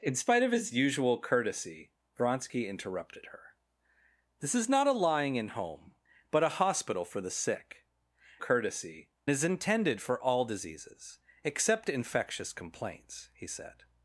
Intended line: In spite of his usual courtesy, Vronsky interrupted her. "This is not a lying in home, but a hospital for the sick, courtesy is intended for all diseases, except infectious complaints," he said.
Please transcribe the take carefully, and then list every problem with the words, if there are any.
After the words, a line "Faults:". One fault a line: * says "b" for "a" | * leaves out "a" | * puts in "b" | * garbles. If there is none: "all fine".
In spite of his usual courtesy, Vronsky interrupted her. "This is not a lying in home, but a hospital for the sick, courtesy is intended for all diseases, except infectious complaints," he said.
Faults:
all fine